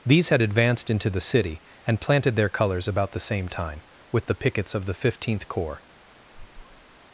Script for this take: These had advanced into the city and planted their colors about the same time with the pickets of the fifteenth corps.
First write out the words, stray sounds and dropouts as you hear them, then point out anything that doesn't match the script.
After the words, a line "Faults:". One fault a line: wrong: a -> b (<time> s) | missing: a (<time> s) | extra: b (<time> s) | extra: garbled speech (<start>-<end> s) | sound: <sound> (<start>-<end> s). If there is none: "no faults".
These had advanced into the city and planted their colors about the same time with the pickets of the fifteenth corps.
Faults:
sound: squeak (6.3-7.0 s)